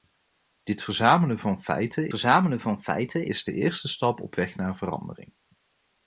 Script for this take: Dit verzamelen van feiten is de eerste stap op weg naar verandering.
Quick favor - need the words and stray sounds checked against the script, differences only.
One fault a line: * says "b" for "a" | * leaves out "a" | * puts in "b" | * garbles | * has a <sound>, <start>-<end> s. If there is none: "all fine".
* puts in "verzamelen van feiten"